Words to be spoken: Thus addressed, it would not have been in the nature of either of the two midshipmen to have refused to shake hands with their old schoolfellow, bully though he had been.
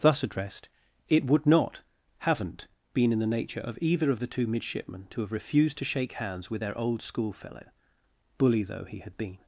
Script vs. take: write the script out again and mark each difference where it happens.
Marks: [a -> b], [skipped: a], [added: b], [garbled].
Thus addressed, it would not [have -> haven't] been in the nature of either of the two midshipmen to have refused to shake hands with their old schoolfellow, bully though he had been.